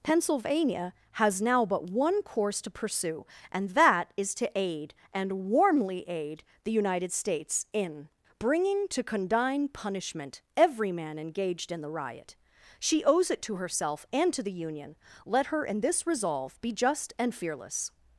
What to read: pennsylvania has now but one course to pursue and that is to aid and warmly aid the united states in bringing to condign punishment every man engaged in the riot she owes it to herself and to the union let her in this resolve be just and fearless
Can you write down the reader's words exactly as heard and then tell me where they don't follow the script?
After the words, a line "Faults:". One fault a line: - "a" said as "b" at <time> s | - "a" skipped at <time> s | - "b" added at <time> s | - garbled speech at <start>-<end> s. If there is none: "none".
pennsylvania has now but one course to pursue and that is to aid and warmly aid the united states in bringing to condign punishment every man engaged in the riot she owes it to herself and to the union let her in this resolve be just and fearless
Faults:
none